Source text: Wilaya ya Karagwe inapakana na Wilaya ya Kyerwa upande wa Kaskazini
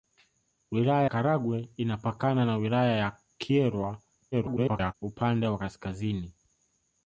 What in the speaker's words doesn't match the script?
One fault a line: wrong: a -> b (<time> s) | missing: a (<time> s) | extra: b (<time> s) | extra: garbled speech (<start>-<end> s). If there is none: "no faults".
missing: ya (1.1 s)
extra: garbled speech (4.3-4.9 s)